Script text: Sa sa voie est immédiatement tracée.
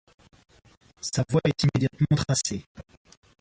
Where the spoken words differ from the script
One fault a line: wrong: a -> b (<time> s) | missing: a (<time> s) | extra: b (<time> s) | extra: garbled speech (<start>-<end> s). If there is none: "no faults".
missing: sa (1.2 s)